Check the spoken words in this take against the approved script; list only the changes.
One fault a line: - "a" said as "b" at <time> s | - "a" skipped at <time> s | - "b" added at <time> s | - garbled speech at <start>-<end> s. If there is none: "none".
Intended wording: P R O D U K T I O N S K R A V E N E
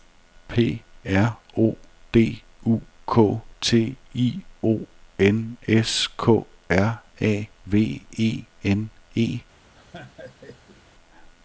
none